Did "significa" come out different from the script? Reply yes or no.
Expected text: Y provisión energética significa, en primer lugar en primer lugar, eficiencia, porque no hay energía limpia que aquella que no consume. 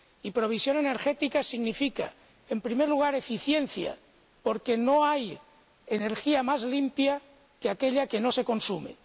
no